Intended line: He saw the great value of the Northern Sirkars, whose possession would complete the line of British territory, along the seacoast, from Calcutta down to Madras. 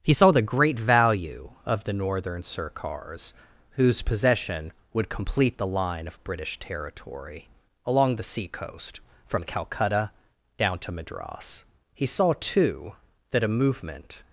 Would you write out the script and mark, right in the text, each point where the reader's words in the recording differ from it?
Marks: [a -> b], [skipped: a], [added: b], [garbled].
He saw the great value of the Northern Sirkars, whose possession would complete the line of British territory, along the seacoast, from Calcutta down to Madras. [added: He saw too that a movement]